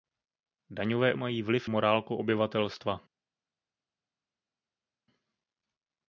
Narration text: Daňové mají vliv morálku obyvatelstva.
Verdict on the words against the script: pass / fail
pass